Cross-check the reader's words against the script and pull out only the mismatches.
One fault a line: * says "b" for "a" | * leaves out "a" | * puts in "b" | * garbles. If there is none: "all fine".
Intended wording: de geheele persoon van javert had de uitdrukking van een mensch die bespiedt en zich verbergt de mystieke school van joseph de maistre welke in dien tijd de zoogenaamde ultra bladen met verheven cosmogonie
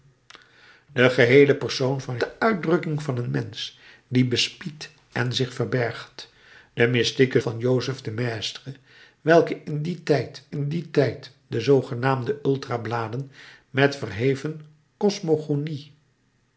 * leaves out "javert had"
* leaves out "school"
* puts in "in dien tijd"